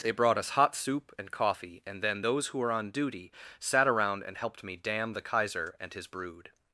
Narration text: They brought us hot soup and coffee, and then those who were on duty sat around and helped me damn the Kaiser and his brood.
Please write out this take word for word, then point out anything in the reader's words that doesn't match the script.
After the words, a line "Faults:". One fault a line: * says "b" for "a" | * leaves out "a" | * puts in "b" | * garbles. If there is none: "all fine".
They brought us hot soup and coffee, and then those who were on duty sat around and helped me damn the Kaiser and his brood.
Faults:
all fine